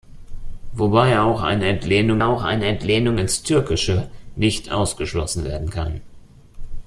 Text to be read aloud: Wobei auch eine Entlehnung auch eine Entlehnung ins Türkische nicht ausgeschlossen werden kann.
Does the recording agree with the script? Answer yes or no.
yes